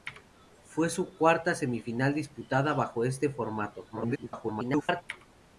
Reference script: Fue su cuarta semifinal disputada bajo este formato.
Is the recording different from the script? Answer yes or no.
yes